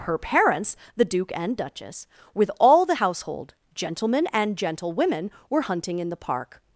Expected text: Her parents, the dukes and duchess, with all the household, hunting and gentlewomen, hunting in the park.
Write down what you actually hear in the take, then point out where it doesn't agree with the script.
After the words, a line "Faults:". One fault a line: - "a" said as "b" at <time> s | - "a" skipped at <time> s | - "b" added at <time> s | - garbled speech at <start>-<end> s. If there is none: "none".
Her parents, the duke and duchess, with all the household, gentlemen and gentlewomen, were hunting in the park.
Faults:
- "dukes" said as "duke" at 1.1 s
- "hunting" said as "gentlemen" at 3.7 s
- "were" added at 5.5 s